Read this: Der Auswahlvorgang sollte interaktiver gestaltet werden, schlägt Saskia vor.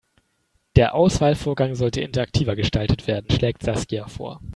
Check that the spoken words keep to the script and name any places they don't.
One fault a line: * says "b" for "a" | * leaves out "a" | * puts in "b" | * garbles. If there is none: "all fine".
all fine